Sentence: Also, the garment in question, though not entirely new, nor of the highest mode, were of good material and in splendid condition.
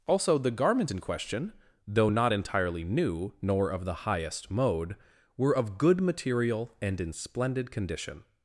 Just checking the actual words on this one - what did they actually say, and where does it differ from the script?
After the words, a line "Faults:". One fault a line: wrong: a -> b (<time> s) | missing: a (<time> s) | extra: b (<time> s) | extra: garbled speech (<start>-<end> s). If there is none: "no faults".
Also, the garment in question, though not entirely new, nor of the highest mode, were of good material and in splendid condition.
Faults:
no faults